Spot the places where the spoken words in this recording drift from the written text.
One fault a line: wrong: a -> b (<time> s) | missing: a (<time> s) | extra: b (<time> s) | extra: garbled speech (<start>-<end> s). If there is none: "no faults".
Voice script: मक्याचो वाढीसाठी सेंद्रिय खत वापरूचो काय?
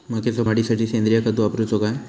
no faults